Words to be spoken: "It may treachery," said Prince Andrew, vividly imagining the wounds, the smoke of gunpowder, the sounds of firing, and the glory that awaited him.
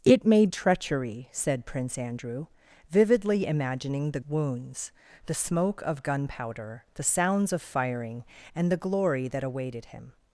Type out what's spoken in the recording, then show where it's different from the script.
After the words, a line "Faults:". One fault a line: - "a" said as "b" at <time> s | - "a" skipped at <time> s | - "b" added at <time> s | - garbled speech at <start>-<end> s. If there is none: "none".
"It may treachery," said Prince Andrew, vividly imagining the wounds, the smoke of gunpowder, the sounds of firing, and the glory that awaited him.
Faults:
none